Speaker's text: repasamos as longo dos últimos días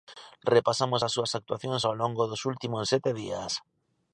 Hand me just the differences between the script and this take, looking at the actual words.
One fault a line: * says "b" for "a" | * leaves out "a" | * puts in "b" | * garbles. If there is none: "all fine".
* puts in "súas actuacións ao"
* puts in "sete"